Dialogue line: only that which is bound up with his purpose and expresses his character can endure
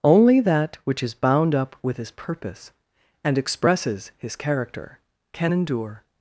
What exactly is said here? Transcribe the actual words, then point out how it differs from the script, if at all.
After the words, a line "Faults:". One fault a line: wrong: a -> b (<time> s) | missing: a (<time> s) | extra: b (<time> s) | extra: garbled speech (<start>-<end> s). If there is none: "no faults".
only that which is bound up with his purpose and expresses his character can endure
Faults:
no faults